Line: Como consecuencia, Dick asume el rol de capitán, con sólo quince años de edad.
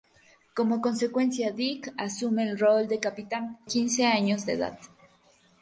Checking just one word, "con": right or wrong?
wrong